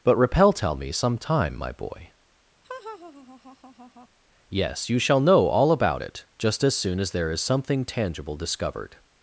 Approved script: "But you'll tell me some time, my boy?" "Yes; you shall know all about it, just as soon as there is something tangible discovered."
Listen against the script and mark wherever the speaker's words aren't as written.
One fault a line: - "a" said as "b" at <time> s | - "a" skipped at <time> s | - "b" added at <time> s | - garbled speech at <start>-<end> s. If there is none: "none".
- "you'll" said as "repel" at 0.2 s